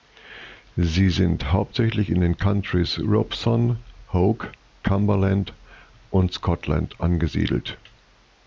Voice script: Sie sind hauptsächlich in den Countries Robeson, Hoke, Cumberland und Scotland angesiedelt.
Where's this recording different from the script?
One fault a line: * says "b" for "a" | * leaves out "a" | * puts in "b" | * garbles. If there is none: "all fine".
all fine